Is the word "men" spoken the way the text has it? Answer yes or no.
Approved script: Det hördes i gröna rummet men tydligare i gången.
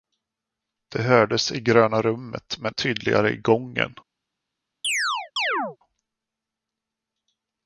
yes